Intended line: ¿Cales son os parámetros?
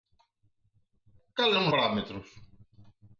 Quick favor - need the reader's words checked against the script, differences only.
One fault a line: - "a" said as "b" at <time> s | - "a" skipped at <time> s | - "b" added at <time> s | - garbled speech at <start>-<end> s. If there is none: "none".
- "os" skipped at 1.7 s